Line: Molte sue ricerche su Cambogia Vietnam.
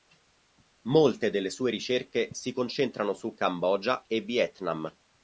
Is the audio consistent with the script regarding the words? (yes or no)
no